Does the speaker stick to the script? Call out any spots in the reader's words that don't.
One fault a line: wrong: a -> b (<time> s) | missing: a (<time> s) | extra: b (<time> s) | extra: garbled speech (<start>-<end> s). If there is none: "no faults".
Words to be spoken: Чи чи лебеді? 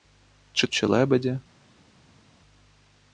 no faults